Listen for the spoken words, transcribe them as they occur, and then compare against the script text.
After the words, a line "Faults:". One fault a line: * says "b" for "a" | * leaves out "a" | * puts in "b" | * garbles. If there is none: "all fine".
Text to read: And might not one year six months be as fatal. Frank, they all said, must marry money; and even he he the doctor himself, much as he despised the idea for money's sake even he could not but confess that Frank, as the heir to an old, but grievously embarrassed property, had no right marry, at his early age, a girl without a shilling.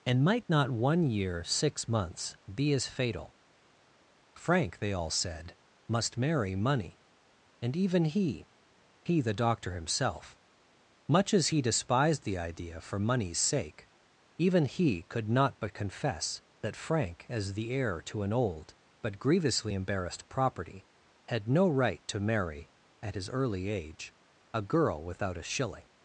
And might not one year six months be as fatal. Frank, they all said, must marry money; and even he he the doctor himself, much as he despised the idea for money's sake even he could not but confess that Frank, as the heir to an old, but grievously embarrassed property, had no right to marry, at his early age, a girl without a shilling.
Faults:
* puts in "to"